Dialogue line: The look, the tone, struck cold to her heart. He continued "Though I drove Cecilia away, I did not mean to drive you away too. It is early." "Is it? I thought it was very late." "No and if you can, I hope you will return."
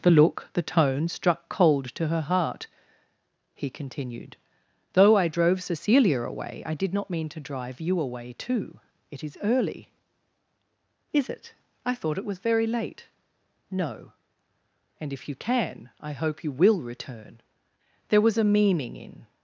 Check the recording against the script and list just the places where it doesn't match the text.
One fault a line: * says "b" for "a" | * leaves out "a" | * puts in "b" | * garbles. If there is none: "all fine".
* puts in "There was a meaning in"